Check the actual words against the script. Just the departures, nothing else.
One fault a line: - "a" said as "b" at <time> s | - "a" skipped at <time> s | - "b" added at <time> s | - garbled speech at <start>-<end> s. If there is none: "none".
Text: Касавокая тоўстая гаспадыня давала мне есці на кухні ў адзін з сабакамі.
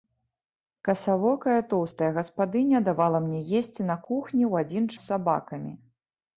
none